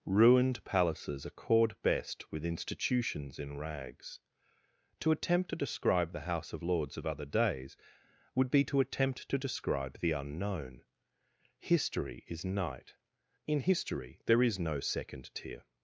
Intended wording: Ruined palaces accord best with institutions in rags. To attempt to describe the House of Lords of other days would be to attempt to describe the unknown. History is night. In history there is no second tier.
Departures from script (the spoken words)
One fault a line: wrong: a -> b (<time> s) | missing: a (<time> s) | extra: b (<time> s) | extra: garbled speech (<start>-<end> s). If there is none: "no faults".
no faults